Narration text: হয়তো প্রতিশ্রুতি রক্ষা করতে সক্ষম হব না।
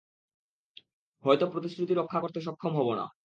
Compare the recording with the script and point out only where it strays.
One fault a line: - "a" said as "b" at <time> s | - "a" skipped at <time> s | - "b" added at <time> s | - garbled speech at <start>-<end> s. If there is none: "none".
none